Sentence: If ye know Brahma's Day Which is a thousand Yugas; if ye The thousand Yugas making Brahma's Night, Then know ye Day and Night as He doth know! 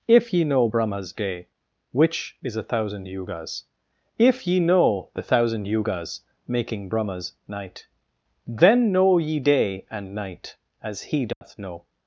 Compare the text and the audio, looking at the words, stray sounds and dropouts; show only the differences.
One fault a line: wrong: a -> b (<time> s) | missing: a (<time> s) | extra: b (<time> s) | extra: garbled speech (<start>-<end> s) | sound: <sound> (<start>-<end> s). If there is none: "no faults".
extra: know (4.6 s)
sound: dropout (11.3-11.4 s)